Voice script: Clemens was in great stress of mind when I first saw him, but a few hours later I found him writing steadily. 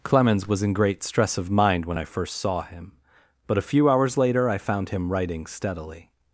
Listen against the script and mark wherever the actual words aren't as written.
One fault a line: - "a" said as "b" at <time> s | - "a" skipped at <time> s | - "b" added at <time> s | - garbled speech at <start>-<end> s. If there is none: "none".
none